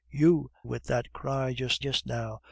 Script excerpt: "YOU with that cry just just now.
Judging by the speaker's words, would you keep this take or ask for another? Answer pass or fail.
pass